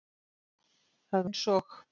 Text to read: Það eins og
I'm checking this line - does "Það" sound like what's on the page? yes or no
yes